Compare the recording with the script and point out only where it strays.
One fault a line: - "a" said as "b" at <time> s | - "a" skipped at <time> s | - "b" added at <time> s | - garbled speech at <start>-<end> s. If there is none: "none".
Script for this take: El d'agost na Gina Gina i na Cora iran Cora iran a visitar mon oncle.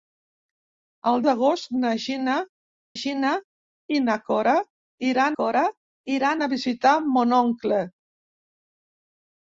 none